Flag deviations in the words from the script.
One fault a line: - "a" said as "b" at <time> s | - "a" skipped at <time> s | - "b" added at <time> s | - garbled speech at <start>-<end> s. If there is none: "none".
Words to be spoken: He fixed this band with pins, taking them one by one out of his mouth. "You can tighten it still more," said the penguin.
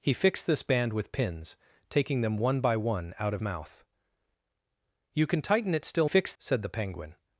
- "his" skipped at 3.4 s
- "more" said as "fixed" at 6.0 s